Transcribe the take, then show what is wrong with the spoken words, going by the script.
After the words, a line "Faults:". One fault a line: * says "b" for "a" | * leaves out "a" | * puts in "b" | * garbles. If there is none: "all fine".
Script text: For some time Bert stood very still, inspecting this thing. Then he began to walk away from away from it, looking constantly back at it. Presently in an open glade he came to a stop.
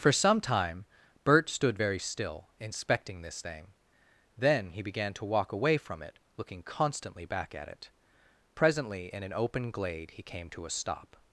For some time Bert stood very still, inspecting this thing. Then he began to walk away from it, looking constantly back at it. Presently in an open glade he came to a stop.
Faults:
* leaves out "away from"